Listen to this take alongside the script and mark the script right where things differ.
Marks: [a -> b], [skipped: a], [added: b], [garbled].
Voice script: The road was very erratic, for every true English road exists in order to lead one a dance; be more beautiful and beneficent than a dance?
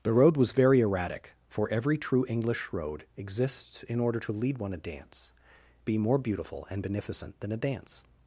The road was very erratic, for every true English road exists in order to lead one a dance; be more beautiful and beneficent than a dance?